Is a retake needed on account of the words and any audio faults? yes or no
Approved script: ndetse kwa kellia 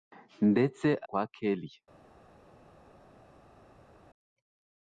no